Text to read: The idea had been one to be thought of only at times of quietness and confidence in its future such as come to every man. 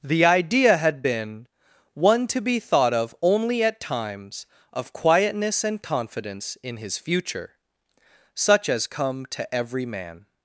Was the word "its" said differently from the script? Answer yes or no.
yes